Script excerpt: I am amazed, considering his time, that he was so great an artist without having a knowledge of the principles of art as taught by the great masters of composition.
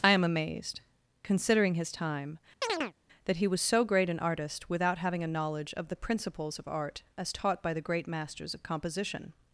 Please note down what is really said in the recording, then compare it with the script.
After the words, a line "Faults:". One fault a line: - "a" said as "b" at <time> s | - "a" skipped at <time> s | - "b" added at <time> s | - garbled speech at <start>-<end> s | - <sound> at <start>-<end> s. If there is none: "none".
I am amazed, considering his time, that he was so great an artist without having a knowledge of the principles of art as taught by the great masters of composition.
Faults:
- chirp at 2.6-2.9 s